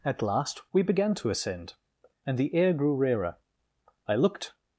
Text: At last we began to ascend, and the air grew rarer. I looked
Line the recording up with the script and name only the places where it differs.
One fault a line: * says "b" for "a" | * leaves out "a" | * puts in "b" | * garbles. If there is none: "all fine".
all fine